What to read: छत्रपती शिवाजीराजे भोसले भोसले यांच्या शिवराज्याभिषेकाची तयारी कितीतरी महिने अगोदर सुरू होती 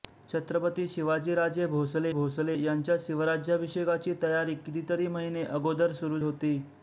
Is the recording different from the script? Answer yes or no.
no